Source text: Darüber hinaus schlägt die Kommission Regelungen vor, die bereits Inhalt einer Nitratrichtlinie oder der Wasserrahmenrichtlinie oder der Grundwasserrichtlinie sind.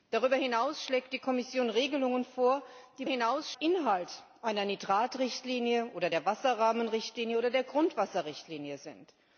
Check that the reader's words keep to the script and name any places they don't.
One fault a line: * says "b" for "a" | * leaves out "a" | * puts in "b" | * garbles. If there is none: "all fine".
* says "hinaus" for "bereits"